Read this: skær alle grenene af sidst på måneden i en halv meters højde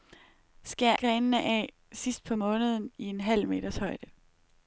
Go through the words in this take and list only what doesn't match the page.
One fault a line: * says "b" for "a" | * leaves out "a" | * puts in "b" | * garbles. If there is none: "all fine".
* leaves out "alle"